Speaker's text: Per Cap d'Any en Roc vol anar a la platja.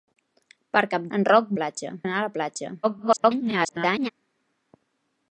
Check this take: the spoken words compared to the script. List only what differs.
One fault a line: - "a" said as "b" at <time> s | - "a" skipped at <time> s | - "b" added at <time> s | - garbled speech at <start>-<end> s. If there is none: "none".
- "d'Any" skipped at 1.1 s
- "vol" said as "platja" at 1.6 s
- garbled speech at 2.8-4.1 s